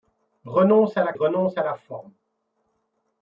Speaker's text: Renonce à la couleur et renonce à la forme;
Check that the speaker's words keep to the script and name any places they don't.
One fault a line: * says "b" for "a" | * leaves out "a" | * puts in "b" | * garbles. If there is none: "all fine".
* leaves out "couleur et"